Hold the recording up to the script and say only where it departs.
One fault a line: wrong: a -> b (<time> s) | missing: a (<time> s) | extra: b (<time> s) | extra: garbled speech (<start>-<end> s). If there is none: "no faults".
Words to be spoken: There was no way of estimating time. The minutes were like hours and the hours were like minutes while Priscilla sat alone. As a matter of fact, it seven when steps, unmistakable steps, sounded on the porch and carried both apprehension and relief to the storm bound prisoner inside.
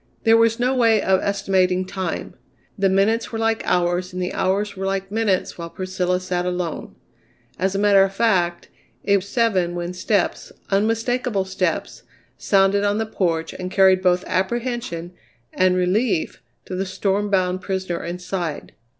no faults